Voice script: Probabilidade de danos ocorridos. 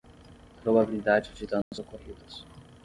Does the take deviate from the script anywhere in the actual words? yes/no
no